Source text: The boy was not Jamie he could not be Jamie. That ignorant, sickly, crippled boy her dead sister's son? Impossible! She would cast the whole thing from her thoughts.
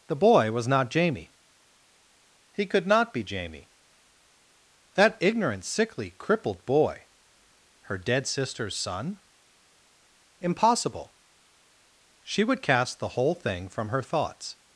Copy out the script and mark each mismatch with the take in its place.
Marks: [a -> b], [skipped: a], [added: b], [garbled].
The boy was not Jamie he could not be Jamie. That ignorant, sickly, crippled boy her dead sister's son? Impossible! She would cast the whole thing from her thoughts.